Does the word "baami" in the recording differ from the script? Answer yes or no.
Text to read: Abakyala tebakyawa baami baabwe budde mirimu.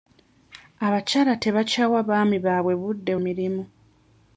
no